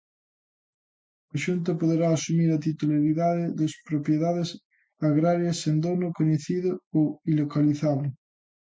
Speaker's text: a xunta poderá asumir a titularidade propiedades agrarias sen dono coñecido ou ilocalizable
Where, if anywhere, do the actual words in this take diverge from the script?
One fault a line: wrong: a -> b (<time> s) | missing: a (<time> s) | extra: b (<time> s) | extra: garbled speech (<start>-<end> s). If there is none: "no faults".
extra: das (3.6 s)